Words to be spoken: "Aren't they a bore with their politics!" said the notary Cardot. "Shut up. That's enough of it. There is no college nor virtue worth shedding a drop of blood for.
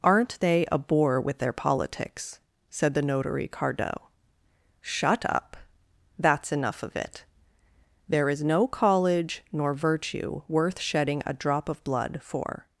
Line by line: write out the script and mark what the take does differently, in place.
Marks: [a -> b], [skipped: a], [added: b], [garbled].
"Aren't they a bore with their politics!" said the notary Cardot. "Shut up. That's enough of it. There is no college nor virtue worth shedding a drop of blood for.